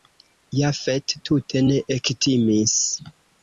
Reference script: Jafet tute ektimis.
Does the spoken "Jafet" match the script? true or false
true